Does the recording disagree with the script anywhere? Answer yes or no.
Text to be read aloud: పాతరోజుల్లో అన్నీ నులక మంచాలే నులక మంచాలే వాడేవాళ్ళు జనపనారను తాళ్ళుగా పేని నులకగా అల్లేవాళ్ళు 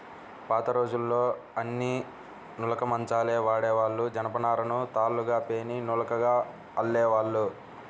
yes